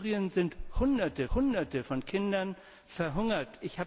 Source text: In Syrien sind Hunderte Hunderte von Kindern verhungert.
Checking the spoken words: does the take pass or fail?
pass